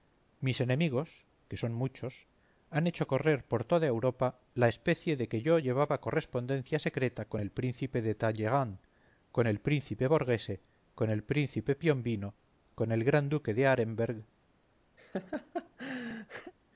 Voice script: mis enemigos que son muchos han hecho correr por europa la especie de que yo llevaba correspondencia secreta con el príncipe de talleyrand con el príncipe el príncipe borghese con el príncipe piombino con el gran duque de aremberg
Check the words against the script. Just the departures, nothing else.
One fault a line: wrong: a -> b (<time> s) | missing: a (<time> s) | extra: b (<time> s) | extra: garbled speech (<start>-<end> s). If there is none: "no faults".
extra: toda (3.6 s)
missing: el príncipe (10.1 s)